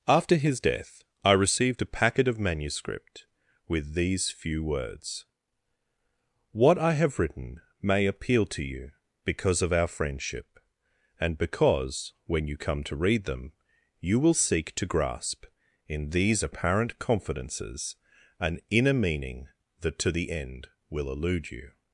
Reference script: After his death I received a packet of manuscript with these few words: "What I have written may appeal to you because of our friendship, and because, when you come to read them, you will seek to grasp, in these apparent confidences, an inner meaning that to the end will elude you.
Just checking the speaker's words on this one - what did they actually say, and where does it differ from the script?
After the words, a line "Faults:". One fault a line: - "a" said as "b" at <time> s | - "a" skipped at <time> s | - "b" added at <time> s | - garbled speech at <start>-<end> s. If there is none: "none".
After his death I received a packet of manuscript with these few words: "What I have written may appeal to you because of our friendship, and because, when you come to read them, you will seek to grasp, in these apparent confidences, an inner meaning that to the end will elude you.
Faults:
none